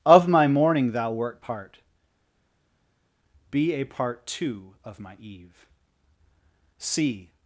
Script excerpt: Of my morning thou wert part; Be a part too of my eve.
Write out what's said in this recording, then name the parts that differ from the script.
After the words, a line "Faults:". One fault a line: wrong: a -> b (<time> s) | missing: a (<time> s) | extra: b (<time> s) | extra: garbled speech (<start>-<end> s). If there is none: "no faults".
Of my morning thou wert part; Be a part too of my eve. See
Faults:
extra: See (6.8 s)